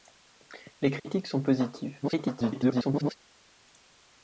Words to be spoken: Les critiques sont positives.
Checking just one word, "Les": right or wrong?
right